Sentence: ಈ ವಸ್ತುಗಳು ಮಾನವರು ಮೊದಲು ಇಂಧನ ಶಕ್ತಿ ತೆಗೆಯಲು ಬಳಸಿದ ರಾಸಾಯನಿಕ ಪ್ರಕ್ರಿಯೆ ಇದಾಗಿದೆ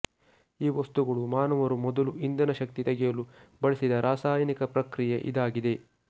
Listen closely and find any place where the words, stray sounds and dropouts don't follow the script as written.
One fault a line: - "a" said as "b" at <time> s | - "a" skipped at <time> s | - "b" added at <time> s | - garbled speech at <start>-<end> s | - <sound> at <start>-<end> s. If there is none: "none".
none